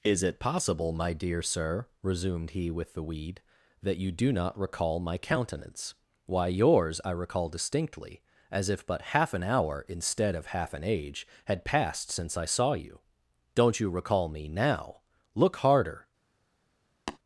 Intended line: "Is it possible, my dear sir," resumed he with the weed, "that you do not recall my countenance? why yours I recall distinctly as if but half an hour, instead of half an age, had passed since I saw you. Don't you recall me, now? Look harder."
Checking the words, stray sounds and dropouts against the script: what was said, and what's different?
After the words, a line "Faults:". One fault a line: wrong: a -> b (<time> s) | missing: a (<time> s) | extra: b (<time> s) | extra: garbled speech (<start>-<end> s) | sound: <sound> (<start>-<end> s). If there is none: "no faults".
"Is it possible, my dear sir," resumed he with the weed, "that you do not recall my countenance? why yours I recall distinctly as if but half an hour, instead of half an age, had passed since I saw you. Don't you recall me, now? Look harder."
Faults:
sound: tap (17.1-17.2 s)